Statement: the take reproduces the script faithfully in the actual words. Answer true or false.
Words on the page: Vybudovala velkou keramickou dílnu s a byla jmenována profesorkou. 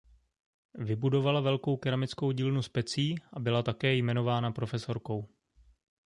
false